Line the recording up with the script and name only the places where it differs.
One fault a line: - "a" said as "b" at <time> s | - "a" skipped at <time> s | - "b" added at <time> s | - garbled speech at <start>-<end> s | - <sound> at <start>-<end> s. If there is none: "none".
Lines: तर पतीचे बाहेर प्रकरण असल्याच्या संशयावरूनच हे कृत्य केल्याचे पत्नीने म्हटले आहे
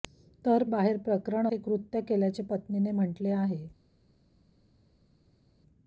- "पतीचे" skipped at 0.6 s
- "असल्याच्या संशयावरूनच" skipped at 1.5 s